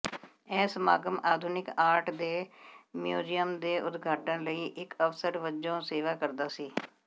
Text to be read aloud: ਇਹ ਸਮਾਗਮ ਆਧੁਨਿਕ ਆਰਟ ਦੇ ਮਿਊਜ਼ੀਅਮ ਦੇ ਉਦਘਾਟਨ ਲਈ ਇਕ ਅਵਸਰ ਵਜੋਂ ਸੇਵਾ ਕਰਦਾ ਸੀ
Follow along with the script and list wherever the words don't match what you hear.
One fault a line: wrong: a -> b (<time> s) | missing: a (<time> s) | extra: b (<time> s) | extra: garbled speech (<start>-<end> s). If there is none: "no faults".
no faults